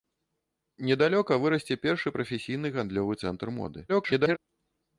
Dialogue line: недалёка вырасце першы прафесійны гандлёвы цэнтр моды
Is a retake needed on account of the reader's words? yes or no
yes